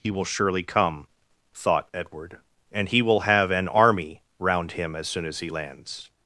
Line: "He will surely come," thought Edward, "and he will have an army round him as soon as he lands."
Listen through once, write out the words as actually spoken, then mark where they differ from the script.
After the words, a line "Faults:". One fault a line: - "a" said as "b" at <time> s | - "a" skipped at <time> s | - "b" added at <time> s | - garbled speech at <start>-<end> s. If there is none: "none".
"He will surely come," thought Edward, "and he will have an army round him as soon as he lands."
Faults:
none